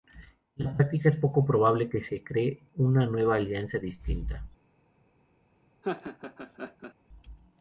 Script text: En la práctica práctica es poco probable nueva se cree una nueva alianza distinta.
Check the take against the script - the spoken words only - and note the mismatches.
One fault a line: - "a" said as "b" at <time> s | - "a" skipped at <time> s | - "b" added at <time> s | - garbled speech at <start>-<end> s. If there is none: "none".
- "práctica" skipped at 1.1 s
- "nueva" said as "que" at 1.9 s